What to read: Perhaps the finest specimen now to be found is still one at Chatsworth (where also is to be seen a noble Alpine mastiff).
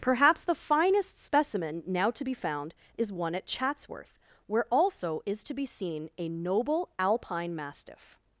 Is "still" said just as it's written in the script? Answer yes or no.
no